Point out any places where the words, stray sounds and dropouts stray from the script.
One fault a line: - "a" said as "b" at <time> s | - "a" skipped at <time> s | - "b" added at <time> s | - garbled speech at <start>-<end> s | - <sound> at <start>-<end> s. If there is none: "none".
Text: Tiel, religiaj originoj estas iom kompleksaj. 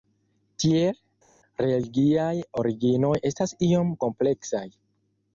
none